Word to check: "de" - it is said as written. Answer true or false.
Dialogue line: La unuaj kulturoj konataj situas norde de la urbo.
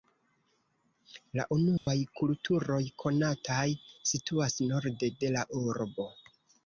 true